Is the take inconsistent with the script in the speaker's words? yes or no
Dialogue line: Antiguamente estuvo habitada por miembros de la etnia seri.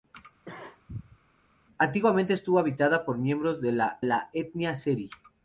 yes